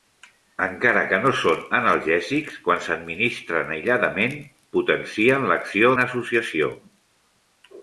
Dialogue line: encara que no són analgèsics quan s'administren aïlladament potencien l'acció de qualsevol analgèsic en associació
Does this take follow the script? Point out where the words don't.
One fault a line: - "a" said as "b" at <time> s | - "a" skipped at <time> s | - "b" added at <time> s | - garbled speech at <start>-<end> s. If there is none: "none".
- "de qualsevol analgèsic" skipped at 6.0 s